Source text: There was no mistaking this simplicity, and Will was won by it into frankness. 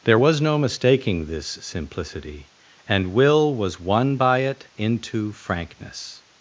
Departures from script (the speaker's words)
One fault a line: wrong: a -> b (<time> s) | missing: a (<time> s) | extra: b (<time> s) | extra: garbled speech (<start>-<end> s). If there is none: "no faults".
no faults